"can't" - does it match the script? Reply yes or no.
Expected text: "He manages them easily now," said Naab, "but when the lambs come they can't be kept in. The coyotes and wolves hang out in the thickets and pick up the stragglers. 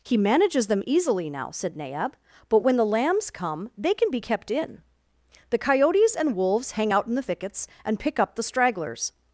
no